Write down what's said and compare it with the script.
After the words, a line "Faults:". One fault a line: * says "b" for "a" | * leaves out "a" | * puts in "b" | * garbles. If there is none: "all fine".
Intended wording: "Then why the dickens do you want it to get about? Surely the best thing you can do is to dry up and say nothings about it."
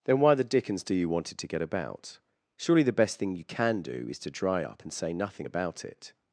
"Then why the dickens do you want it to get about? Surely the best thing you can do is to dry up and say nothing about it."
Faults:
* says "nothing" for "nothings"